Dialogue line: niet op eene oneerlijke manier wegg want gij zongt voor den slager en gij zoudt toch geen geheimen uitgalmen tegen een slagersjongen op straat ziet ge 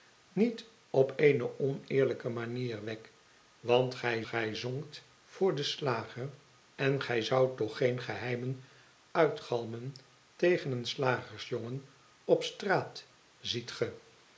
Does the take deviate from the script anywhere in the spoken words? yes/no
yes